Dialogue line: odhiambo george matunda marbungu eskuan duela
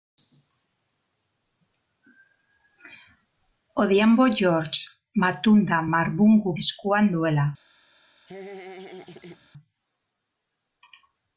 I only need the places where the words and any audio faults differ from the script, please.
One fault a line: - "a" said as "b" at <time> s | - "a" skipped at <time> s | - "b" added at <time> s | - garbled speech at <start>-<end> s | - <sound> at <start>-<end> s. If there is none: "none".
- laugh at 8.3-9.5 s